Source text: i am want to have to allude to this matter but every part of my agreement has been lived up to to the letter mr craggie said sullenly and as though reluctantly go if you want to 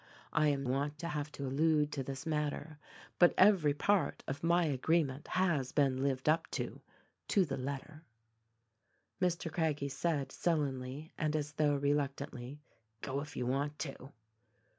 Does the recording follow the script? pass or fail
pass